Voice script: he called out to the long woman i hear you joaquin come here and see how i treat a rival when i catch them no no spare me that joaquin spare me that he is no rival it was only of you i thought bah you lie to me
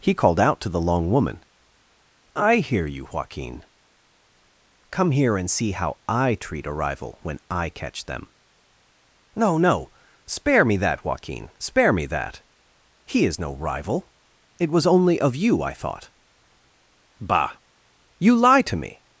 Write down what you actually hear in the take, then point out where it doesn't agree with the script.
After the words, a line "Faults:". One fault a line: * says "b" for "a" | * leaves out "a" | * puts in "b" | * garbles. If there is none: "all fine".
he called out to the long woman i hear you joaquin come here and see how i treat a rival when i catch them no no spare me that joaquin spare me that he is no rival it was only of you i thought bah you lie to me
Faults:
all fine